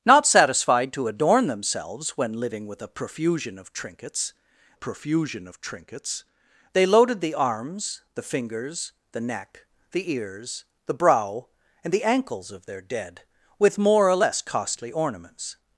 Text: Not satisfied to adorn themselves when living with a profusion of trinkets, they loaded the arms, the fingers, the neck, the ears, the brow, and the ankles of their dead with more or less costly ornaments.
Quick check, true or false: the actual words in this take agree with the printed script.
false